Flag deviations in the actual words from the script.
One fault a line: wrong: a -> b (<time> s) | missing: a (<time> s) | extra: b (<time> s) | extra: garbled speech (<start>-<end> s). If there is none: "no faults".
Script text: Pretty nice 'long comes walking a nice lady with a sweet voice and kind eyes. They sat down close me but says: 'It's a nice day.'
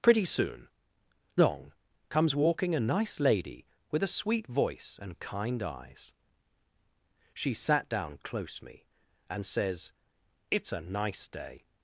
wrong: nice -> soon (0.2 s)
wrong: They -> She (7.3 s)
wrong: but -> and (9.3 s)